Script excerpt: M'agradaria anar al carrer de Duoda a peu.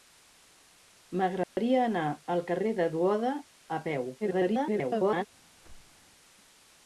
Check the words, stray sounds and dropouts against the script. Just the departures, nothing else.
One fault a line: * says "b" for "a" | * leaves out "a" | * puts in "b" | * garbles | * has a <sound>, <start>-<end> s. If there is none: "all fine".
* has a dropout, 1.4-1.6 s
* garbles
* has a whoosh, 5.6-6.1 s